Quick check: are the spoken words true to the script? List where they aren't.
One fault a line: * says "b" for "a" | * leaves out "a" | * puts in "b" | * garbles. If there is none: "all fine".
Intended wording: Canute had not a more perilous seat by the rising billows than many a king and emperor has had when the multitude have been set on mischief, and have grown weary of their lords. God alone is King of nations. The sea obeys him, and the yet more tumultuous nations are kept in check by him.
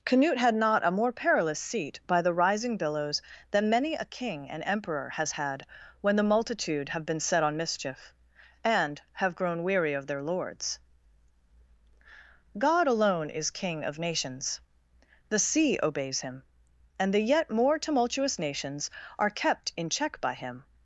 all fine